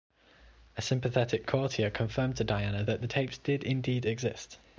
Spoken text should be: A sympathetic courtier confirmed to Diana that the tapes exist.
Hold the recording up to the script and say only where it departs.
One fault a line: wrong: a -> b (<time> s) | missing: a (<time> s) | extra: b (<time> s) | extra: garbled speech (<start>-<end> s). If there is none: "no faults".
extra: did indeed (3.4 s)